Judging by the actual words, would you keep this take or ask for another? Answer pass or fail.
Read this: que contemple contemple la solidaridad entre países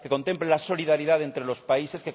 fail